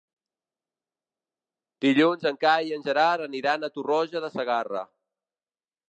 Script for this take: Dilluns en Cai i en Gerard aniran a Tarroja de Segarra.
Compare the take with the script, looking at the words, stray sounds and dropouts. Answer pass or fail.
pass